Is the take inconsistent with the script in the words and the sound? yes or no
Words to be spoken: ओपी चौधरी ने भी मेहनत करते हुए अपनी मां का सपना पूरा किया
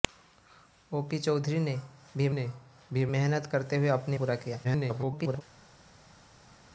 yes